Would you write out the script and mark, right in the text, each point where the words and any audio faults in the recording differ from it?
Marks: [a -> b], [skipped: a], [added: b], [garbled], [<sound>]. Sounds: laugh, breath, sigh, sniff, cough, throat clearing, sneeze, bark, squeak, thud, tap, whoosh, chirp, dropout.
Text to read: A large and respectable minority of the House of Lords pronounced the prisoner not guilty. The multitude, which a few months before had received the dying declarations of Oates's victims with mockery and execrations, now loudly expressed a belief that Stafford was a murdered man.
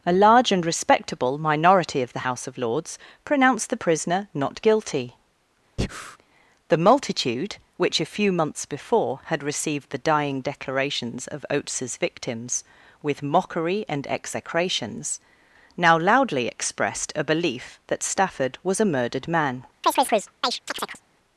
A large and respectable minority of the House of Lords pronounced the prisoner not guilty. [breath] The multitude, which a few months before had received the dying declarations of Oates's victims with mockery and execrations, now loudly expressed a belief that Stafford was a murdered man. [chirp]